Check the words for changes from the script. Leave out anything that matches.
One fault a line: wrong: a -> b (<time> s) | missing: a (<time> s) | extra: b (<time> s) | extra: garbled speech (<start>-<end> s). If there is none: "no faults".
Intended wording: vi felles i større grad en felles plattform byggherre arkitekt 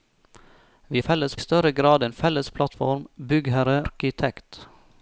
no faults